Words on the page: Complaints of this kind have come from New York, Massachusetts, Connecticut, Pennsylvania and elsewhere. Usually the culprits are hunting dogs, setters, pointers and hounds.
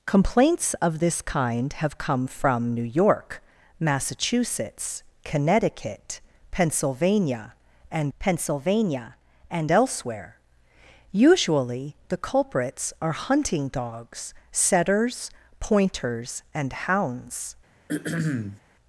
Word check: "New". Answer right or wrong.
right